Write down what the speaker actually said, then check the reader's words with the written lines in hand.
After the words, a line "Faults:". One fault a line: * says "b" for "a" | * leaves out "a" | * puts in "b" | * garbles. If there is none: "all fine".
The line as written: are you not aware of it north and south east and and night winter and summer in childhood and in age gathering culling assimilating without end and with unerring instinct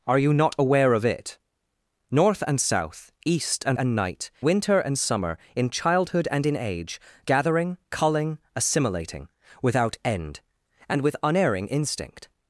are you not aware of it north and south east and and night winter and summer in childhood and in age gathering culling assimilating without end and with unerring instinct
Faults:
all fine